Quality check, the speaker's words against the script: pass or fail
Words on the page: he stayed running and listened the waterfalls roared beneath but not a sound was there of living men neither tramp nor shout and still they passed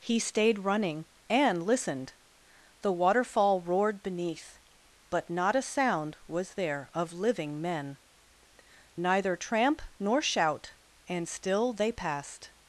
fail